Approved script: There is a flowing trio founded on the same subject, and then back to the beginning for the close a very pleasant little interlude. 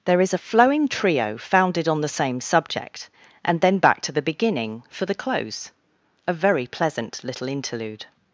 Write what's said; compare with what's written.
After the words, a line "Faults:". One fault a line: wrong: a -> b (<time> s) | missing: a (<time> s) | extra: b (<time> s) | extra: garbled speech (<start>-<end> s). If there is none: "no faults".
There is a flowing trio founded on the same subject, and then back to the beginning for the close a very pleasant little interlude.
Faults:
no faults